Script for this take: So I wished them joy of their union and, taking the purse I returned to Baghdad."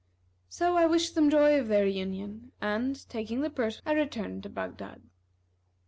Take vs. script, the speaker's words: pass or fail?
pass